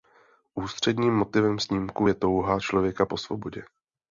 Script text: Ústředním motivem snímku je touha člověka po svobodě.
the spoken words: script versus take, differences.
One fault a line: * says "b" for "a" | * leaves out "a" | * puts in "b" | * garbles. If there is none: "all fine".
all fine